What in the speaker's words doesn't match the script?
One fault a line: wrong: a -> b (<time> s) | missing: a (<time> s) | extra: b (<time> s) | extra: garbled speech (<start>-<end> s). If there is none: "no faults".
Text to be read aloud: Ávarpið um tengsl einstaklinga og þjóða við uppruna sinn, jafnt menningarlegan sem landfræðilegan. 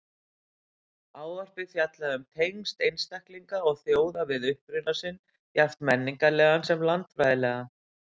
extra: fjallaði (1.7 s)